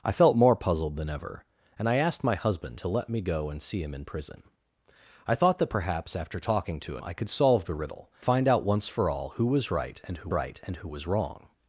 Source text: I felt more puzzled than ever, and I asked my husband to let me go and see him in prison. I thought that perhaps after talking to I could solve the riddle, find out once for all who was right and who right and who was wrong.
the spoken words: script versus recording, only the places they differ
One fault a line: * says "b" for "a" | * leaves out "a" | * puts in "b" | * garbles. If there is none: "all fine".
all fine